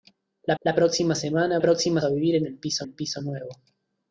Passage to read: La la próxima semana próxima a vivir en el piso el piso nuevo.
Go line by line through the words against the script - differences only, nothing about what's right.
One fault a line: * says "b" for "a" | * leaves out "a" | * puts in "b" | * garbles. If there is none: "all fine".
all fine